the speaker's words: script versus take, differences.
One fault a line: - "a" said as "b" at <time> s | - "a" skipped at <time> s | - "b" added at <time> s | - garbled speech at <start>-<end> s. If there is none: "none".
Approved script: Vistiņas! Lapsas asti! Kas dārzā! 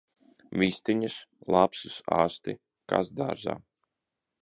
none